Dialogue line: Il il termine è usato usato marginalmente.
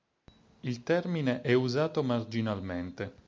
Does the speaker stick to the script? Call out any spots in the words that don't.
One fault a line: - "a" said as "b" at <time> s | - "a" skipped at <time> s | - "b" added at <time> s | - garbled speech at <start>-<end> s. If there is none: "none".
- "il" skipped at 0.8 s
- "usato" skipped at 2.0 s